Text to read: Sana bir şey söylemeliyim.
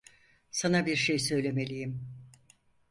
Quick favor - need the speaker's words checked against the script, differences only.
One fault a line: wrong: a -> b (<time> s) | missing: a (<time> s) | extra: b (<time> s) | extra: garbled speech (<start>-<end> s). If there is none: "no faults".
no faults